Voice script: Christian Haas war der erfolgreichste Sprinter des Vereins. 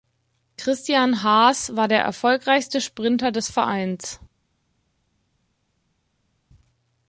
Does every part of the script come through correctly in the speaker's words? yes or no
yes